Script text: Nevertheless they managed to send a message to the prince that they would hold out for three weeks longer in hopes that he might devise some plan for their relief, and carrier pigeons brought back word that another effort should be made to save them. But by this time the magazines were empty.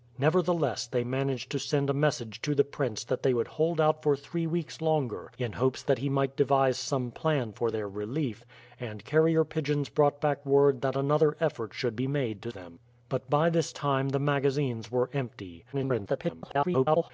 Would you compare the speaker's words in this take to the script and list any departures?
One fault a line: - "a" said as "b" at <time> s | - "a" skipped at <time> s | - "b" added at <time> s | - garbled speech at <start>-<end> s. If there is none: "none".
- "save" skipped at 12.5 s
- garbled speech at 15.7-17.1 s